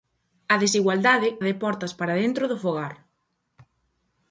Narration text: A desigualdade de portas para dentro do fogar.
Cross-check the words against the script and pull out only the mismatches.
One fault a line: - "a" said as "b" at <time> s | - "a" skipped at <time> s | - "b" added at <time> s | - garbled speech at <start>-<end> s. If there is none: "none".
none